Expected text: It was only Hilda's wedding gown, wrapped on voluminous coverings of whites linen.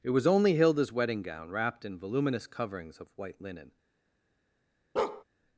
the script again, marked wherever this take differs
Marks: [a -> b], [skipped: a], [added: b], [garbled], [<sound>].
It was only Hilda's wedding gown, wrapped [on -> in] voluminous coverings of [whites -> white] linen. [bark]